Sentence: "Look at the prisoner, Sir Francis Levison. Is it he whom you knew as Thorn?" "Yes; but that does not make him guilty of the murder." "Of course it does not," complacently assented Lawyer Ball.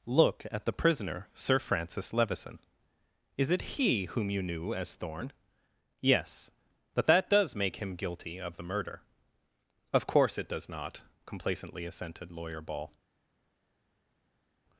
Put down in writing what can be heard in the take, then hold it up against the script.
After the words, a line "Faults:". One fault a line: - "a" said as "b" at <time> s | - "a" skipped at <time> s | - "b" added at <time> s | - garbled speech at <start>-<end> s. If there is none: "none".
"Look at the prisoner, Sir Francis Levison. Is it he whom you knew as Thorn?" "Yes; but that does make him guilty of the murder." "Of course it does not," complacently assented Lawyer Ball.
Faults:
- "not" skipped at 7.5 s